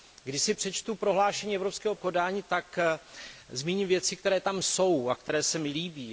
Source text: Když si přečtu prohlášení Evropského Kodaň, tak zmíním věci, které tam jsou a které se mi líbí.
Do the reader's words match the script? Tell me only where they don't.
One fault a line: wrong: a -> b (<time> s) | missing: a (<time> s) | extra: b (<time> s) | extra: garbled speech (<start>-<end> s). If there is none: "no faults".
no faults